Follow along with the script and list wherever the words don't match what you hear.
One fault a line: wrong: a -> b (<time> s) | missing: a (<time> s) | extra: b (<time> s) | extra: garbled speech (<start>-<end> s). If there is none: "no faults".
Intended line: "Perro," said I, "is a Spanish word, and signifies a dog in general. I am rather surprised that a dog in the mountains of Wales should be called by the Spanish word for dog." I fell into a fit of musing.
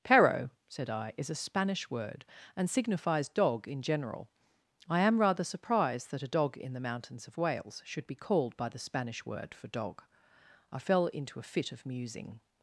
missing: a (3.3 s)